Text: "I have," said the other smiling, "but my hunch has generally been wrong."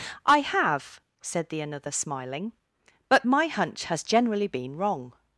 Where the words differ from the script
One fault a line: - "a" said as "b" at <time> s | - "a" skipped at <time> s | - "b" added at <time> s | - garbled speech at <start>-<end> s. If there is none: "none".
- "other" said as "another" at 1.6 s